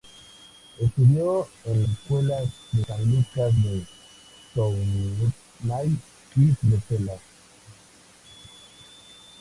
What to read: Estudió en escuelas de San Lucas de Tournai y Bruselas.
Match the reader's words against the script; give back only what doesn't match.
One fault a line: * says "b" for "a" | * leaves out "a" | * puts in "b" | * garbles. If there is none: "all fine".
all fine